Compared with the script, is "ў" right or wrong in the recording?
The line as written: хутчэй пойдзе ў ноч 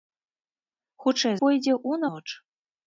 right